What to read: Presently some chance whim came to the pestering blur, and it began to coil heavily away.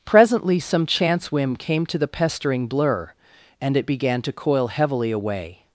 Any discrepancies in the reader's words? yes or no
no